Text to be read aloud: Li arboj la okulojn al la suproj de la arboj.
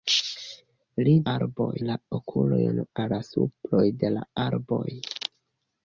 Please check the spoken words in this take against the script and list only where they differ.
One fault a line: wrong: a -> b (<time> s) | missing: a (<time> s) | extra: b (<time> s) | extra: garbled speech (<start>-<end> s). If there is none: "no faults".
no faults